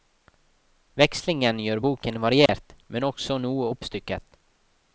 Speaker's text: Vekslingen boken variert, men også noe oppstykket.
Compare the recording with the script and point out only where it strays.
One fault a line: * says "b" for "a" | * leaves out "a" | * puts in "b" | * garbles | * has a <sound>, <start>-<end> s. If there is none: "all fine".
* puts in "gjør"
* has a dropout, 2.5-2.5 s